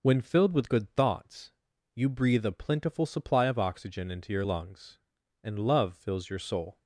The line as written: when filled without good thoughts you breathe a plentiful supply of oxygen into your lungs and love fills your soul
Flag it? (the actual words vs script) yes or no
yes